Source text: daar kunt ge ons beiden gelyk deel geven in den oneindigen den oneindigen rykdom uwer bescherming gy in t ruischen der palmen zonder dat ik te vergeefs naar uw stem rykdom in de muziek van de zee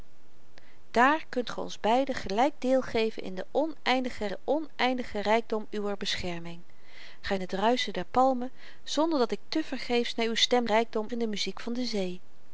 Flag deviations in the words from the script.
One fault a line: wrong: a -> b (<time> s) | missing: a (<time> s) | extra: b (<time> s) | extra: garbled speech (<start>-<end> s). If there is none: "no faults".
no faults